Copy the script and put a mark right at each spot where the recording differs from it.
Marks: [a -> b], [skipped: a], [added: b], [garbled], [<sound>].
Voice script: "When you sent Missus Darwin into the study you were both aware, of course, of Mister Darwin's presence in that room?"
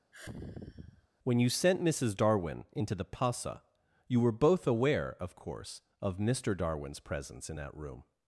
[sigh] "When you sent Missus Darwin into the [study -> pasa] you were both aware, of course, of Mister Darwin's presence in that room?"